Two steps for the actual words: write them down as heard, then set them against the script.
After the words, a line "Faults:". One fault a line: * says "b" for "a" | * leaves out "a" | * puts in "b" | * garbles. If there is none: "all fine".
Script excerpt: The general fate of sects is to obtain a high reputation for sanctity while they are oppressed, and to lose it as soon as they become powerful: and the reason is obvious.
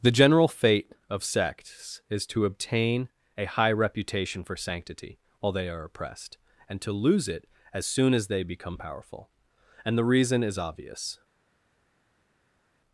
The general fate of sects is to obtain a high reputation for sanctity while they are oppressed, and to lose it as soon as they become powerful: and the reason is obvious.
Faults:
all fine